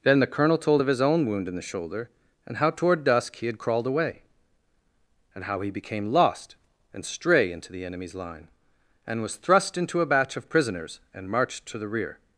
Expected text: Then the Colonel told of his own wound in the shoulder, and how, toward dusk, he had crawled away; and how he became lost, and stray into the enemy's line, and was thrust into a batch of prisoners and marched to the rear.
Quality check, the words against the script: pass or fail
pass